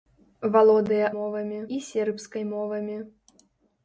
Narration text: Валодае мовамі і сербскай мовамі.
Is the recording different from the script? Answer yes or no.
no